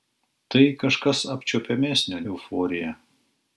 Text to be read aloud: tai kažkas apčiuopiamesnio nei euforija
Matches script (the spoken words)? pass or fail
fail